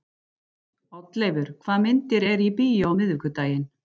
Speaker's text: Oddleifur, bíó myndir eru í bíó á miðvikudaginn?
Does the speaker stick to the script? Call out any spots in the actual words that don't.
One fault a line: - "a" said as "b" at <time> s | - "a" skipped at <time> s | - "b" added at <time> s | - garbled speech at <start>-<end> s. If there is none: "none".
- "bíó" said as "hvaða" at 1.6 s